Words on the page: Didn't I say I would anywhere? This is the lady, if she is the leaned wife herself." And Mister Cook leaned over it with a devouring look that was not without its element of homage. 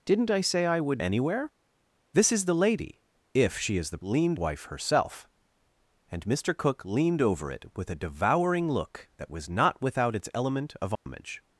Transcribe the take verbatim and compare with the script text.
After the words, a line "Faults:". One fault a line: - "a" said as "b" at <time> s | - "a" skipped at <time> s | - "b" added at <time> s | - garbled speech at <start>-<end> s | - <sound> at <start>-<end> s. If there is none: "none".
Didn't I say I would anywhere? This is the lady, if she is the leaned wife herself." And Mister Cook leaned over it with a devouring look that was not without its element of homage.
Faults:
- dropout at 11.0-11.1 s